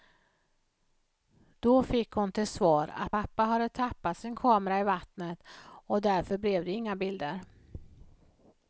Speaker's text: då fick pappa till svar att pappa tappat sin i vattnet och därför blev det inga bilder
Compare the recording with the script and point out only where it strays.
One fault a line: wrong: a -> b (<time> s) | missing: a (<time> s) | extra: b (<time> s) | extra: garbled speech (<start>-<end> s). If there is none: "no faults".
wrong: pappa -> hon (2.1 s)
extra: hade (3.4 s)
extra: kamera (4.4 s)